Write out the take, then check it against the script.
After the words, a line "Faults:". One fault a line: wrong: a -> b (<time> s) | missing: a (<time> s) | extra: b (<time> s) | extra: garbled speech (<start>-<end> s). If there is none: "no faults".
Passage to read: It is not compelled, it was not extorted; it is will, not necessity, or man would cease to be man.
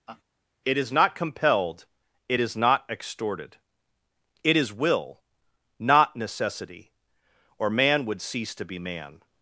It is not compelled, it is not extorted; it is will, not necessity, or man would cease to be man.
Faults:
wrong: was -> is (2.4 s)